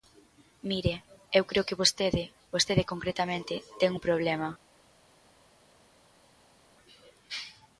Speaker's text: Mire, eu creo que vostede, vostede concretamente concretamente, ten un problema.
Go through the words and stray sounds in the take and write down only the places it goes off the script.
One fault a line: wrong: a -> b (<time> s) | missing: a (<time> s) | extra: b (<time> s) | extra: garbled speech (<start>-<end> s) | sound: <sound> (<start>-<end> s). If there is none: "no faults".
missing: concretamente (3.5 s)